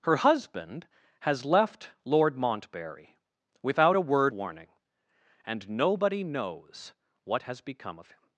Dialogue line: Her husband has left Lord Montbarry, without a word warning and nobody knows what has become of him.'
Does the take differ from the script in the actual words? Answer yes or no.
no